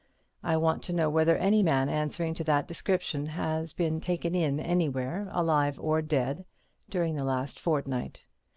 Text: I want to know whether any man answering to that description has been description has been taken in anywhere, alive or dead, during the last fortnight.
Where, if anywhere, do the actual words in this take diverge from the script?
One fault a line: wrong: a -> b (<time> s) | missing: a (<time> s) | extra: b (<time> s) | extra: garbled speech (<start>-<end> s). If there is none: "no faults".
missing: description has been (4.0 s)